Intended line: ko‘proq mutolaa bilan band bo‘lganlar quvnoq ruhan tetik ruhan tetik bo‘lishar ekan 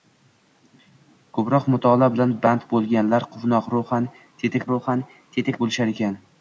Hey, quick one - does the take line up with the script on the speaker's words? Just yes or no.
yes